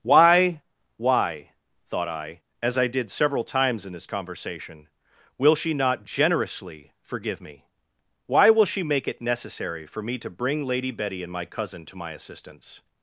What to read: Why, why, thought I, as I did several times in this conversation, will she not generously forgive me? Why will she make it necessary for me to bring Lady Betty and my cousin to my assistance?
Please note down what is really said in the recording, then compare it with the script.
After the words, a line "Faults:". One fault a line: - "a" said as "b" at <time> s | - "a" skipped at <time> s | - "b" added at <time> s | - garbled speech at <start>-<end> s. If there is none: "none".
Why, why, thought I, as I did several times in this conversation, will she not generously forgive me? Why will she make it necessary for me to bring Lady Betty and my cousin to my assistance?
Faults:
none